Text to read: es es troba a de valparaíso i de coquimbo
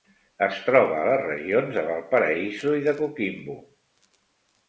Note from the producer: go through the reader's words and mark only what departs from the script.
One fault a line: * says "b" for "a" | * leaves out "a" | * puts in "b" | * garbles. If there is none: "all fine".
* leaves out "es"
* puts in "les regions"